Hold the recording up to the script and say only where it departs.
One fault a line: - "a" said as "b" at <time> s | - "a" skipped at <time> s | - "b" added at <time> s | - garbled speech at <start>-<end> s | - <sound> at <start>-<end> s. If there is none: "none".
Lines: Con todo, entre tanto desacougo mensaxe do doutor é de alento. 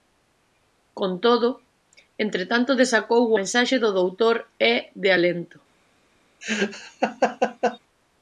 - laugh at 6.4-7.8 s